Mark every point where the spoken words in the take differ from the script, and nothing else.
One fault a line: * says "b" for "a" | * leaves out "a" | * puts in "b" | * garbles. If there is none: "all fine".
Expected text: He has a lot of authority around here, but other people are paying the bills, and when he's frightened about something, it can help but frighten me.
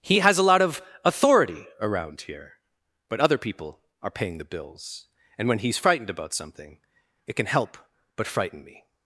all fine